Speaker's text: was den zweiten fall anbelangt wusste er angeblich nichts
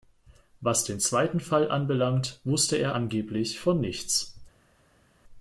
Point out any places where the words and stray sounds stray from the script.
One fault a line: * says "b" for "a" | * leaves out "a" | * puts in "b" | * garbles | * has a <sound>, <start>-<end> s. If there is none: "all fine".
* puts in "von"